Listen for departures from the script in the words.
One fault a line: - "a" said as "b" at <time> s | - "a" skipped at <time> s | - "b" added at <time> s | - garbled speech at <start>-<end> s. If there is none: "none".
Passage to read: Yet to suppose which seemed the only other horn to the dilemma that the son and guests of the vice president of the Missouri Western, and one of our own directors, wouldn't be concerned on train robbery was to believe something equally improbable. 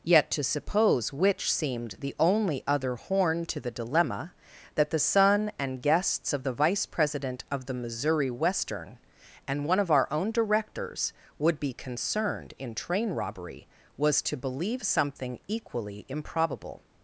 - "wouldn't" said as "would" at 11.4 s
- "on" said as "in" at 12.6 s